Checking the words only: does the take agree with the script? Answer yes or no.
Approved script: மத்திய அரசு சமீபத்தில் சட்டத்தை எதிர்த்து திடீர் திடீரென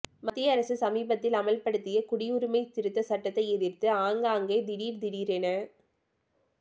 no